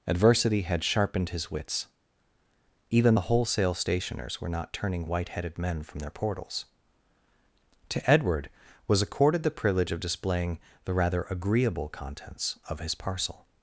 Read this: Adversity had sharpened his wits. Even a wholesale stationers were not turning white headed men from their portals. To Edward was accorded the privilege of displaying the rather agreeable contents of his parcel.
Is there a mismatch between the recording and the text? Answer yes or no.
yes